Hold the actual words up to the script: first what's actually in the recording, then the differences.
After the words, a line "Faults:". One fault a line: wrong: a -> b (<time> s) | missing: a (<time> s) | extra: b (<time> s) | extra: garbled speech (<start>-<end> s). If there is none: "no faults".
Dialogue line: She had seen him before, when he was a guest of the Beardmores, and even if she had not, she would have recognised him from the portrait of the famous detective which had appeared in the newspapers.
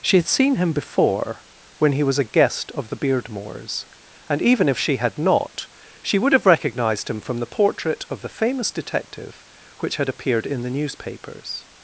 She had seen him before, when he was a guest of the Beardmores, and even if she had not, she would have recognised him from the portrait of the famous detective which had appeared in the newspapers.
Faults:
no faults